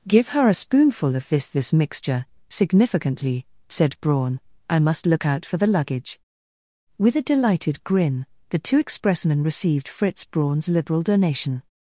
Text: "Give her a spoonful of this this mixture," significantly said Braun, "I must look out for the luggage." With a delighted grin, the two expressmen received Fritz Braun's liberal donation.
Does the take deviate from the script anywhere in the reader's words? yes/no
no